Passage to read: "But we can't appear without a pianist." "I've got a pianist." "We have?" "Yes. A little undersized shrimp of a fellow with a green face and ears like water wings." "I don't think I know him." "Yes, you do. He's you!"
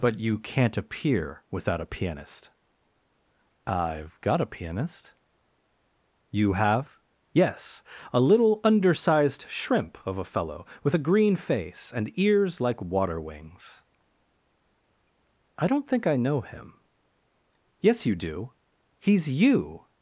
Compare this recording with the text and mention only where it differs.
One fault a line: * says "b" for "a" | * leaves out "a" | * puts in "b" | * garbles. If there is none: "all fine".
* says "you" for "we"
* says "You" for "We"